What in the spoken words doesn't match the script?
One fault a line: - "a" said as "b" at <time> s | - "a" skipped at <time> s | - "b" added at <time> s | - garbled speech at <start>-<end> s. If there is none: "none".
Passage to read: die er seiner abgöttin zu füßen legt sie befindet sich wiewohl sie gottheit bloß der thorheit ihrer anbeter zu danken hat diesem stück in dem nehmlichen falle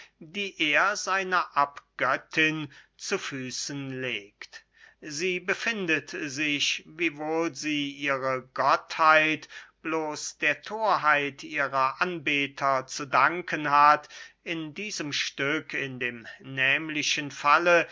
- "ihre" added at 7.9 s
- "in" added at 14.4 s